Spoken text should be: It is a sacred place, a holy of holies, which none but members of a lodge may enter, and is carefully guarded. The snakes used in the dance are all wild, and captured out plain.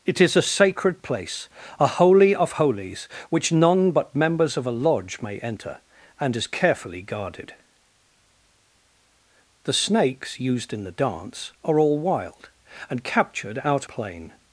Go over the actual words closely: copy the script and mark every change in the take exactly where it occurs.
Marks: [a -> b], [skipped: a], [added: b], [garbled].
It is a sacred place, a holy of holies, which none but members of a lodge may enter, and is carefully guarded. The snakes used in the dance are all wild, and captured out plain.